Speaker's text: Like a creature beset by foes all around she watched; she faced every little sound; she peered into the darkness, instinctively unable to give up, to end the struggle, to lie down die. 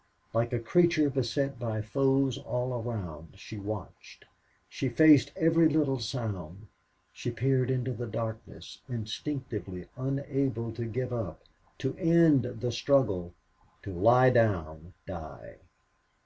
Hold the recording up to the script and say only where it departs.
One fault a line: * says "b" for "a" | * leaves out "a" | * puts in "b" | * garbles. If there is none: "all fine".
all fine